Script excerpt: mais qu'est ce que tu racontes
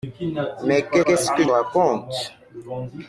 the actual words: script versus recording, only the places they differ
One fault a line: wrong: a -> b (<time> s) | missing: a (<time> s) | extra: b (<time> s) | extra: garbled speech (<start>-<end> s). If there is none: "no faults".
extra: qu'est (1.0 s)
missing: tu (1.5 s)